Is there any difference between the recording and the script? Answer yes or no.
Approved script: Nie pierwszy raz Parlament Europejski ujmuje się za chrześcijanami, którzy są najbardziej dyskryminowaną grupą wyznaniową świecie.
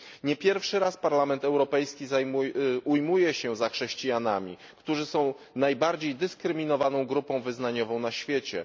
yes